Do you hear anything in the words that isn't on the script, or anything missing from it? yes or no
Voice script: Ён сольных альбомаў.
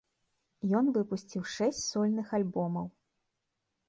yes